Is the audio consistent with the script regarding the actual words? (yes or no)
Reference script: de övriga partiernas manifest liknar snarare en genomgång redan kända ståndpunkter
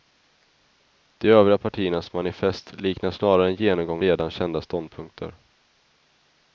yes